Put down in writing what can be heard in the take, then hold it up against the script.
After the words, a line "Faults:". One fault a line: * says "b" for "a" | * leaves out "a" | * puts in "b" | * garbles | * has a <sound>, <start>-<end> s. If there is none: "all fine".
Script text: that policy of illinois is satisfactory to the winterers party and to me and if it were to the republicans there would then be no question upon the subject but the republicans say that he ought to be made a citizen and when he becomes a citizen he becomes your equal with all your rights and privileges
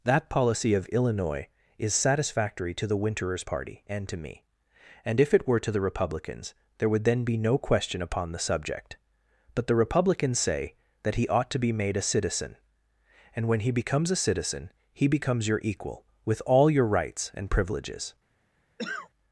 that policy of illinois is satisfactory to the winterers party and to me and if it were to the republicans there would then be no question upon the subject but the republicans say that he ought to be made a citizen and when he becomes a citizen he becomes your equal with all your rights and privileges
Faults:
* has a cough, 18.8-19.1 s